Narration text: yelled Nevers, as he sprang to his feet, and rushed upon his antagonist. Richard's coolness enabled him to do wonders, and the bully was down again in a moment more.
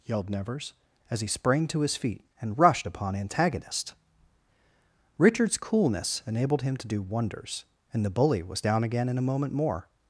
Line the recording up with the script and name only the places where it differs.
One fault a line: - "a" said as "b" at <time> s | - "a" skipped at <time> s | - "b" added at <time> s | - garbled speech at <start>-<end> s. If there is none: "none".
- "his" skipped at 3.2 s